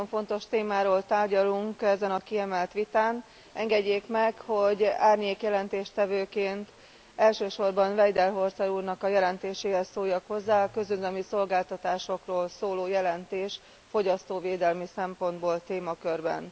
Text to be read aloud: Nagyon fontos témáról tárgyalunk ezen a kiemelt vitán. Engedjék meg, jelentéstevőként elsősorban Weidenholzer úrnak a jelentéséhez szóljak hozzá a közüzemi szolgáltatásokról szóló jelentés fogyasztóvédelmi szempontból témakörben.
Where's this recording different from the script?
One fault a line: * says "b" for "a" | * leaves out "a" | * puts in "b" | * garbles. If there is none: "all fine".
* puts in "hogy árnyék"